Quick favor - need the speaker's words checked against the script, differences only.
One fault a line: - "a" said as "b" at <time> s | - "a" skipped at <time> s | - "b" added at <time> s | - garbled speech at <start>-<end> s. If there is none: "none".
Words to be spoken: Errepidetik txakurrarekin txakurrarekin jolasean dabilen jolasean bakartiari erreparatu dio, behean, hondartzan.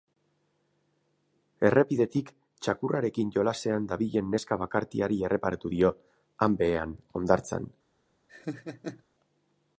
- "txakurrarekin" skipped at 3.4 s
- "jolasean" said as "neska" at 4.3 s
- "han" added at 6.5 s